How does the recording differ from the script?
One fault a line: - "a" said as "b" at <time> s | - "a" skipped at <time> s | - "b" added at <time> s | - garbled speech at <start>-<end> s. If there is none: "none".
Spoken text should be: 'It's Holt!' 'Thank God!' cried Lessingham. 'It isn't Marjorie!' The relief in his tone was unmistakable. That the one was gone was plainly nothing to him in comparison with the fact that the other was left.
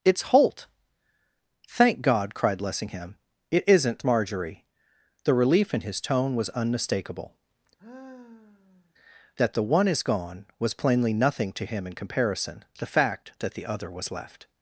- "was" said as "is" at 9.9 s
- "with" skipped at 12.7 s